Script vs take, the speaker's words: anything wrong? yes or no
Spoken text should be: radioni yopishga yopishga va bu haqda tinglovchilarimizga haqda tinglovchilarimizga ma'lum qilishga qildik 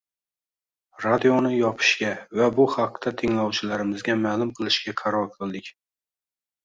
yes